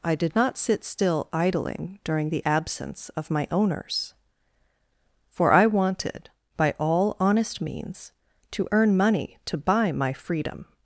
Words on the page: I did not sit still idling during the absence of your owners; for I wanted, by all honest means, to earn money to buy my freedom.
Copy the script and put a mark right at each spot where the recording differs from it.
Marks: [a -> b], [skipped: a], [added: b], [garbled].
I did not sit still idling during the absence of [your -> my] owners; for I wanted, by all honest means, to earn money to buy my freedom.